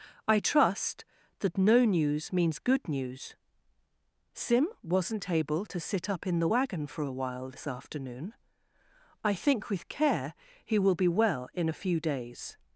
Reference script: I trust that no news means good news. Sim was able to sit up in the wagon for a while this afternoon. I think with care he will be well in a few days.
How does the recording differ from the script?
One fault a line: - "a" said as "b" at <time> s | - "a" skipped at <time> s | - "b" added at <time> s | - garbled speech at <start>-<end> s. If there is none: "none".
- "was" said as "wasn't" at 4.8 s